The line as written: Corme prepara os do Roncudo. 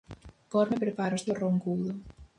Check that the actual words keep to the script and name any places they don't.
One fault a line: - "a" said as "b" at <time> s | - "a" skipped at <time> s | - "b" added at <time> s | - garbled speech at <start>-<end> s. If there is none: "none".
none